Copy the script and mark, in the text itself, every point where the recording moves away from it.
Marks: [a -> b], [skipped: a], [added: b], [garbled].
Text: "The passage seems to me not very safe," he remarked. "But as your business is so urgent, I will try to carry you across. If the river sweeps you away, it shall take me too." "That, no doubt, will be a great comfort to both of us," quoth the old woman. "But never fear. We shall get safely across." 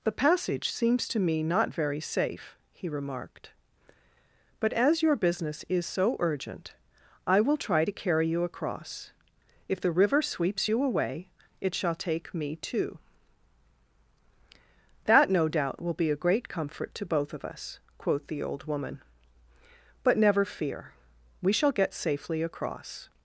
"The passage seems to me not very safe," he remarked. "But as your business is so urgent, I will try to carry you across. If the river sweeps you away, it shall take me too." "That, no doubt, will be a great comfort to both of us," quoth the old woman. "But never fear. We shall get safely across."